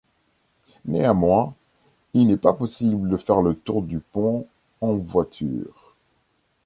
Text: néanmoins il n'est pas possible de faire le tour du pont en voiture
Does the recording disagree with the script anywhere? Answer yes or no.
no